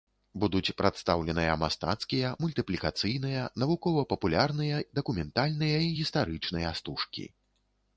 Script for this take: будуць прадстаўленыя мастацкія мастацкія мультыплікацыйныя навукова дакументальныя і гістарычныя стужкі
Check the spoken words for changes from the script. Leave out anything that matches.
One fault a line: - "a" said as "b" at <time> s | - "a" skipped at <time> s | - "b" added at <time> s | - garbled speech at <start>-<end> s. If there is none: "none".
- "мастацкія" skipped at 2.3 s
- "папулярныя" added at 4.1 s